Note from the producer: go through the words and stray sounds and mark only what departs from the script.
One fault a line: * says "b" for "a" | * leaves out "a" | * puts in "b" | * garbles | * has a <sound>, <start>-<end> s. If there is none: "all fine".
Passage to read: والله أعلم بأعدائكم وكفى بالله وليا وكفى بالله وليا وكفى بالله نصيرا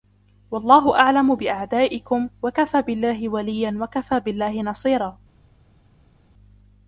* leaves out "وليا وكفى بالله"